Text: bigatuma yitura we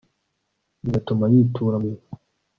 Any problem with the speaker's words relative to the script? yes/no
no